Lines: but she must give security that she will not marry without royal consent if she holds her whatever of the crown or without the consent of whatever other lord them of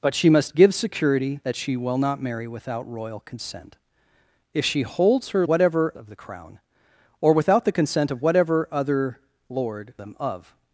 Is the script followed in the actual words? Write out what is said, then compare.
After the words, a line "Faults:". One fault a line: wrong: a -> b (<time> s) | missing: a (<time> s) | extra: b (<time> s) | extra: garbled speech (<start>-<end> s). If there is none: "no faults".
but she must give security that she will not marry without royal consent if she holds her whatever of the crown or without the consent of whatever other lord them of
Faults:
no faults